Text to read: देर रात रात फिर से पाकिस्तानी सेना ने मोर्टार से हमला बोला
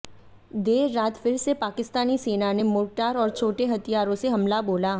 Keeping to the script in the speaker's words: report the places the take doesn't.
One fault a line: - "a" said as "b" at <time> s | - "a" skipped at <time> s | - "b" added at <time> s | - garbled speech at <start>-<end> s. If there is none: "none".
- "रात" skipped at 1.2 s
- "और छोटे हथियारों" added at 3.2 s